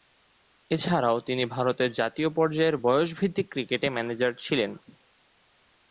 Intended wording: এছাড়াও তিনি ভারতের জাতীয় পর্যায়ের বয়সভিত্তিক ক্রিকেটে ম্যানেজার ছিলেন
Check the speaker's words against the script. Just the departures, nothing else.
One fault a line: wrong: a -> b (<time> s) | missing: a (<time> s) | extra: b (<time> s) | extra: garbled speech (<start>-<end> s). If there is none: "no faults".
no faults